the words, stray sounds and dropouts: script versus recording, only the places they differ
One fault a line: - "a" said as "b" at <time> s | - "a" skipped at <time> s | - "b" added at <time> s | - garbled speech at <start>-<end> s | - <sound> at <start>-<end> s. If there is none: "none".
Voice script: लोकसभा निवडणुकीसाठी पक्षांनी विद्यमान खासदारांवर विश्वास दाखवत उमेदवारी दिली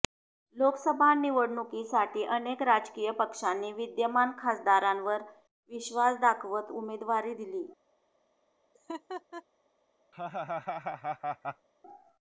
- "अनेक राजकीय" added at 2.4 s
- laugh at 8.7-9.4 s
- laugh at 10.1-11.7 s